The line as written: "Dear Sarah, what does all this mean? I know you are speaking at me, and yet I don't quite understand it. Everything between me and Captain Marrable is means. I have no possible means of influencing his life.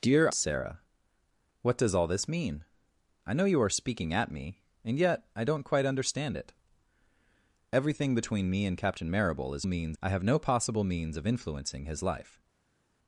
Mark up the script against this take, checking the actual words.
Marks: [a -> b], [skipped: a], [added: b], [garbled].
"Dear Sarah, what does all this mean? I know you are speaking at me, and yet I don't quite understand it. Everything between me and Captain Marrable is means. I have no possible means of influencing his life.